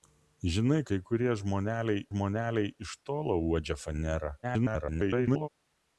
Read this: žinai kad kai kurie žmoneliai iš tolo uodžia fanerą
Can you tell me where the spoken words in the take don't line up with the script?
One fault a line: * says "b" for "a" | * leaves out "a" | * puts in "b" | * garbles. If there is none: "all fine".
* leaves out "kad"
* puts in "žmoneliai"
* garbles